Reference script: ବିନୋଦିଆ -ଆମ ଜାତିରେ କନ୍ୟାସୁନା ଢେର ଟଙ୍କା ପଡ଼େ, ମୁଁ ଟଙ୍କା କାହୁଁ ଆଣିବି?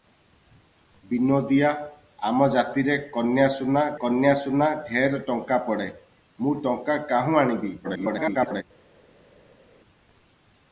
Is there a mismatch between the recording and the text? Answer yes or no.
yes